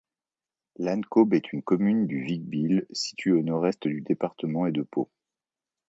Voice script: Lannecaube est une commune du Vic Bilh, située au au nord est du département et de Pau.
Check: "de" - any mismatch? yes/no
no